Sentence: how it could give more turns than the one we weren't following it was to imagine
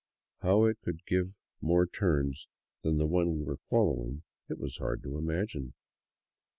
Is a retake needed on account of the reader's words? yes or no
yes